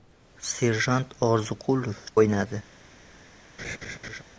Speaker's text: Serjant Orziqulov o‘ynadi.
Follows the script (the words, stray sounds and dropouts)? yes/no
no